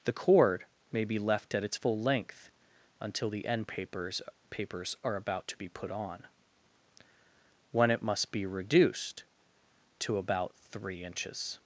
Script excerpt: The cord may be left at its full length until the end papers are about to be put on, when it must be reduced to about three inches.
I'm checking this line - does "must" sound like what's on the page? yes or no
yes